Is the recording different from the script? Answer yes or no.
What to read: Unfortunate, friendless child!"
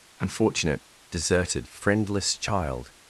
yes